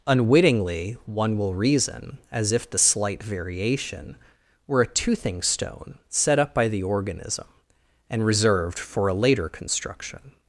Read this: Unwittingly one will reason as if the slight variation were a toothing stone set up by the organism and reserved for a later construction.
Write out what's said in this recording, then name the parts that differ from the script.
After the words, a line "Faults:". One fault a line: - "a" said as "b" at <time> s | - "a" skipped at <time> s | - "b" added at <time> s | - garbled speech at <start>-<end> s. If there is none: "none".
Unwittingly one will reason as if the slight variation were a toothing stone set up by the organism and reserved for a later construction.
Faults:
none